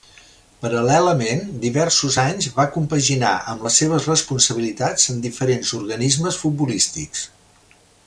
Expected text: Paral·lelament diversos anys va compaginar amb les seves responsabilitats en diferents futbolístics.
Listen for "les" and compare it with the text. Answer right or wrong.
right